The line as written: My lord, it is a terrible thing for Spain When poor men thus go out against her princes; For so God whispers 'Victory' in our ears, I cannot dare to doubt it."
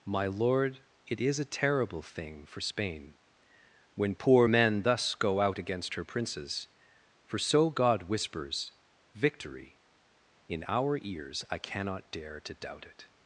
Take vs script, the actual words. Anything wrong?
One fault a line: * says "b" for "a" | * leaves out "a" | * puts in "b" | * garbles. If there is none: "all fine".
all fine